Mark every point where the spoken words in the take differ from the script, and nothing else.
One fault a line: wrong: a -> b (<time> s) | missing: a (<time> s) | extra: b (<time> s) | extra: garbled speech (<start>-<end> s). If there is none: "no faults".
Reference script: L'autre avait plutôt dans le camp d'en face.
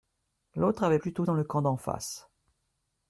no faults